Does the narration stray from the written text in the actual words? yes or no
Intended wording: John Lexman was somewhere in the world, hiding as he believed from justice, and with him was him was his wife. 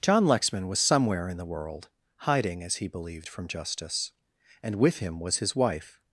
yes